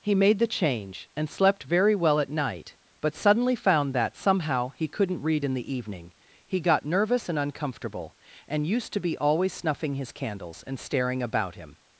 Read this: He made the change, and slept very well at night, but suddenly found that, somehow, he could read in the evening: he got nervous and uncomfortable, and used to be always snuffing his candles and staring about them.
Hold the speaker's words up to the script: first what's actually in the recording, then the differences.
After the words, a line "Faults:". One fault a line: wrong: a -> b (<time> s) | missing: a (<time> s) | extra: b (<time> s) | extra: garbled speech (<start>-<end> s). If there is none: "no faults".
He made the change, and slept very well at night, but suddenly found that, somehow, he couldn't read in the evening: he got nervous and uncomfortable, and used to be always snuffing his candles and staring about him.
Faults:
wrong: could -> couldn't (4.9 s)
wrong: them -> him (11.5 s)